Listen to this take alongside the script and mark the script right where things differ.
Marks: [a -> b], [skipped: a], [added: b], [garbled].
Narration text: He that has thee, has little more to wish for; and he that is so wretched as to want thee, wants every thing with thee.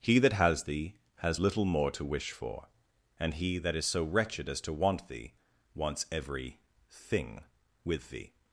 He that has thee, has little more to wish for; and he that is so wretched as to want thee, wants every thing with thee.